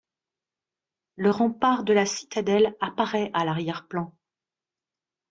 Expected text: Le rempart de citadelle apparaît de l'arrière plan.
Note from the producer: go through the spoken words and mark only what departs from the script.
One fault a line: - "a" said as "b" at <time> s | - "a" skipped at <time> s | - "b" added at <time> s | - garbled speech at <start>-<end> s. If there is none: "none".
- "la" added at 1.9 s
- "de" said as "à" at 3.3 s